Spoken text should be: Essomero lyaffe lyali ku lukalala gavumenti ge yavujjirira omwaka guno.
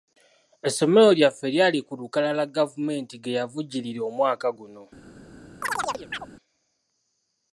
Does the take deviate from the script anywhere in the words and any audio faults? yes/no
yes